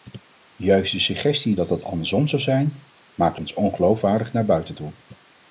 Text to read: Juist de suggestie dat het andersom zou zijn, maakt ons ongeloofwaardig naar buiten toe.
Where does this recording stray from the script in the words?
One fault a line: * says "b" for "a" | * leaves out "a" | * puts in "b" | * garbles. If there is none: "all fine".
all fine